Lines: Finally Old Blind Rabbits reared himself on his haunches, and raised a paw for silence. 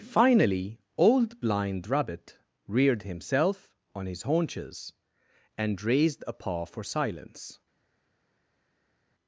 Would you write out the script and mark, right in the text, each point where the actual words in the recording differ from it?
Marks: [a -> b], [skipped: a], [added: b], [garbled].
Finally Old Blind [Rabbits -> Rabbit] reared himself on his haunches, and raised a paw for silence.